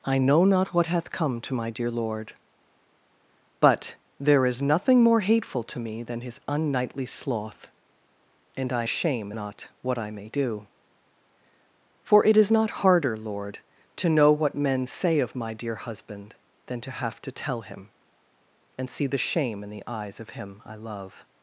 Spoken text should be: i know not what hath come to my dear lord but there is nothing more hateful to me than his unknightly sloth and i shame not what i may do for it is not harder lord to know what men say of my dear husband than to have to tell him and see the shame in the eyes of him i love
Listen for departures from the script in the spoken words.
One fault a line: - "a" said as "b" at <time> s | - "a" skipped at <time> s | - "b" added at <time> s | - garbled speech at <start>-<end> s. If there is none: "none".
none